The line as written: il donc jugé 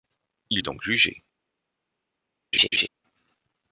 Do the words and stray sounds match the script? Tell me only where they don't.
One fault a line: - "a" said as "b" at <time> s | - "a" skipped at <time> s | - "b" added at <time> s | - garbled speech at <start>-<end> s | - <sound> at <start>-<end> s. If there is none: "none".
- laugh at 2.5-2.9 s